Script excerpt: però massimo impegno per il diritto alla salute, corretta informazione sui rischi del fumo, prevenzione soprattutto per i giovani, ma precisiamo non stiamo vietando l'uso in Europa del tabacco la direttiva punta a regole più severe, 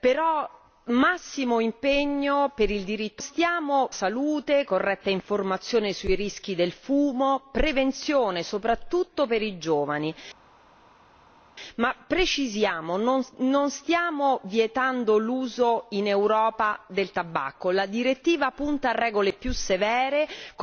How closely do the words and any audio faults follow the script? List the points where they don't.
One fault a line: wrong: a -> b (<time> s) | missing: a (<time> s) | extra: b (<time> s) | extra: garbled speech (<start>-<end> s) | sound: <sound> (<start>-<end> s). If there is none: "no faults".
wrong: alla -> stiamo (3.2 s)